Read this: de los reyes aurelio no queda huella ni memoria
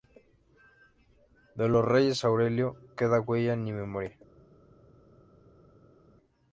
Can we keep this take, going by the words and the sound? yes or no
no